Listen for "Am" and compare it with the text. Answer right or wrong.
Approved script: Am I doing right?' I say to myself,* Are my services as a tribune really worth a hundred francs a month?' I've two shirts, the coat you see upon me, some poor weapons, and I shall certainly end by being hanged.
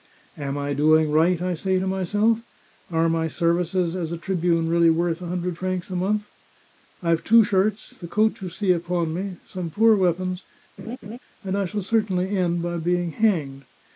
right